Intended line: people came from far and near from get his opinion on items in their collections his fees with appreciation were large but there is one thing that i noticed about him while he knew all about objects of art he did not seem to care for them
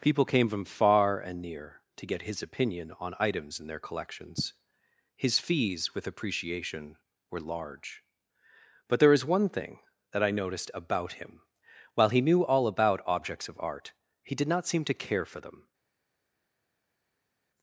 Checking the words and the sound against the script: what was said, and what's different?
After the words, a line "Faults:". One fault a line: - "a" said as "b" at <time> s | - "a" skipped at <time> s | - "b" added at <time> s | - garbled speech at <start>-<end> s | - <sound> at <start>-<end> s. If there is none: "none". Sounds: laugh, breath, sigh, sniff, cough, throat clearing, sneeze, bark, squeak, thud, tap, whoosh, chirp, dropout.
people came from far and near to get his opinion on items in their collections his fees with appreciation were large but there is one thing that i noticed about him while he knew all about objects of art he did not seem to care for them
Faults:
- "from" said as "to" at 1.9 s